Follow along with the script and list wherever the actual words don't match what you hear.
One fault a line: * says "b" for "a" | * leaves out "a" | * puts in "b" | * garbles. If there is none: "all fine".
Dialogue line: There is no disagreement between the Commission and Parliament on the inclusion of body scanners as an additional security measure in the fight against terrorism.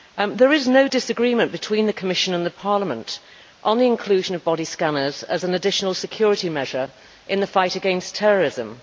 all fine